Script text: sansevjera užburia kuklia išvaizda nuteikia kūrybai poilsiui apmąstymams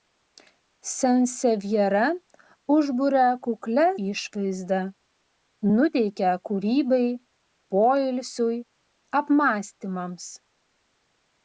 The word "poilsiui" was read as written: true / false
true